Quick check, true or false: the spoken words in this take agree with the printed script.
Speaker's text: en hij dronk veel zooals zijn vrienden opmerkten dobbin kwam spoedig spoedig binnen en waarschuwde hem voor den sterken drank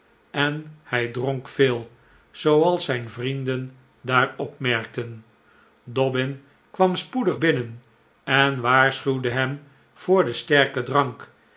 false